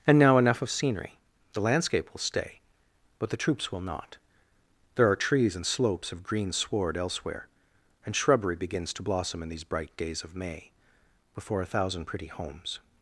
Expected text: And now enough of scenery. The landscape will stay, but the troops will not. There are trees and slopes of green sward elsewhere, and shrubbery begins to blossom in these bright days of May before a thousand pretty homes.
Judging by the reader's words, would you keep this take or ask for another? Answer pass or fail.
pass